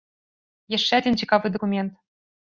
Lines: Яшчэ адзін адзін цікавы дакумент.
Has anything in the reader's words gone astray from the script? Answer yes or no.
yes